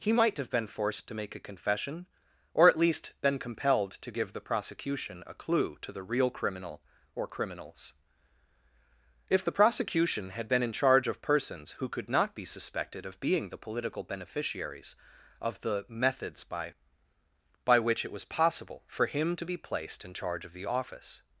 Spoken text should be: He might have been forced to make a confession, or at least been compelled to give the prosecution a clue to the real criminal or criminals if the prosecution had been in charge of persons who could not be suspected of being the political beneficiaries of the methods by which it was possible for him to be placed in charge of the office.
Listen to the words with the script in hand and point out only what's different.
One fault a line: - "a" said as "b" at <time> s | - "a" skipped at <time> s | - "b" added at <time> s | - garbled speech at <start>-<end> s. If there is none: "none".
- "by" added at 17.6 s